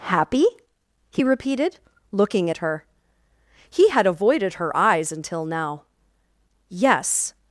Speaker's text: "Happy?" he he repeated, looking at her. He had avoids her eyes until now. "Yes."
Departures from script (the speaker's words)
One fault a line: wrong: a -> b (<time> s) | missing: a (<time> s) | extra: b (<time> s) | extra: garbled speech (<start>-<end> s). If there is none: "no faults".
missing: he (1.2 s)
wrong: avoids -> avoided (4.1 s)